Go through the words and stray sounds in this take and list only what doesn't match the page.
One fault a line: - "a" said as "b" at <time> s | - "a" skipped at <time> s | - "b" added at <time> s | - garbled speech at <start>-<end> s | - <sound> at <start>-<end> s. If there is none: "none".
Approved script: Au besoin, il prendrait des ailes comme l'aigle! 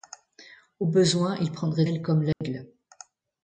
- "des" skipped at 1.9 s
- dropout at 2.3-2.4 s